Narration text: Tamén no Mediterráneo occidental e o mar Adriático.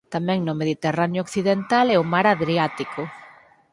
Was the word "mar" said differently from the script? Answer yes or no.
no